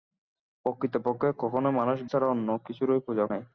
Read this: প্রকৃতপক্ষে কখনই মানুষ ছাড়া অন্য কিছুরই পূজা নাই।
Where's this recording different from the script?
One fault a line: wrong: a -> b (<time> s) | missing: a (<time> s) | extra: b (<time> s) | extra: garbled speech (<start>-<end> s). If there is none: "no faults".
no faults